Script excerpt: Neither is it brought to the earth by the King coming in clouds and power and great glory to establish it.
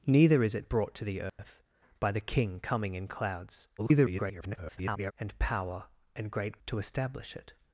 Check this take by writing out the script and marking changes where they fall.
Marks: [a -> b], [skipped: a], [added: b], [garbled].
Neither is it brought to the earth by the King coming in clouds [garbled] and power and great [skipped: glory] to establish it.